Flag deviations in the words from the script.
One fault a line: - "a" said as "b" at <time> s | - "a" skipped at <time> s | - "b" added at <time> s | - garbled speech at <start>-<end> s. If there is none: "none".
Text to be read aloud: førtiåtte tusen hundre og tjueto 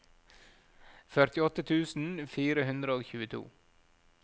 - "fire" added at 2.4 s